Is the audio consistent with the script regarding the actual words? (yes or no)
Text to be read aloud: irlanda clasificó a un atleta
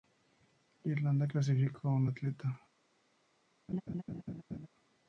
yes